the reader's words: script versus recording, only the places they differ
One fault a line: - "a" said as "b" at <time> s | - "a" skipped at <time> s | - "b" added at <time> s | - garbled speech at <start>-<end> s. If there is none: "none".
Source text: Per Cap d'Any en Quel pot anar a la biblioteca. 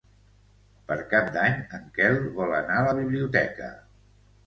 - "pot" said as "vol" at 2.4 s